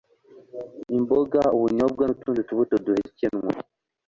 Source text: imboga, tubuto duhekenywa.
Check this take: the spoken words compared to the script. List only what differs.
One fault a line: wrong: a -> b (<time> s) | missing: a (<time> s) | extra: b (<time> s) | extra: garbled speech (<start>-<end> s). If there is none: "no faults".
extra: ubunyobwa n'utundi (1.6 s)